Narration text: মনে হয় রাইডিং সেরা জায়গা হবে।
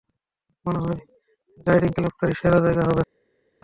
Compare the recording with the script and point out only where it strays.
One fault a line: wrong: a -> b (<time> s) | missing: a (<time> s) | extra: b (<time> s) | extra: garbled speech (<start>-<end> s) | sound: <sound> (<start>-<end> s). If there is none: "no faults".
extra: ক্লাবটাই (2.0 s)